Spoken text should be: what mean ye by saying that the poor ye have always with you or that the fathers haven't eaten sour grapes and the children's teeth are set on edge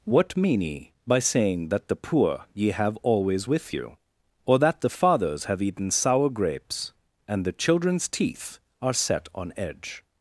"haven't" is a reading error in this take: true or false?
true